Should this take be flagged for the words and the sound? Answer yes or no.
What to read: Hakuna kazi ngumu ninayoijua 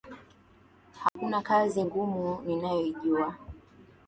yes